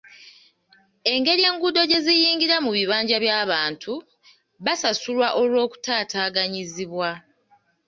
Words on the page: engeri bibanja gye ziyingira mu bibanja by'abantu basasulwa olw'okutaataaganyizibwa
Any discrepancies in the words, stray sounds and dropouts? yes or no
yes